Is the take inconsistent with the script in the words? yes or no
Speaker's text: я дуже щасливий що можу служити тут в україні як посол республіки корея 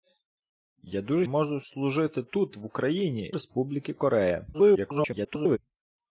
yes